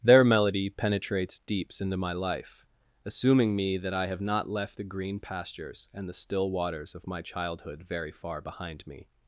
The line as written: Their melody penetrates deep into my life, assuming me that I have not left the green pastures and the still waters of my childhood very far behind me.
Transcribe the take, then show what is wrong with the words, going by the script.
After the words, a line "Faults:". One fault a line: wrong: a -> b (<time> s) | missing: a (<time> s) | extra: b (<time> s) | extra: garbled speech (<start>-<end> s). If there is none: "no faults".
Their melody penetrates deeps into my life, assuming me that I have not left the green pastures and the still waters of my childhood very far behind me.
Faults:
wrong: deep -> deeps (1.4 s)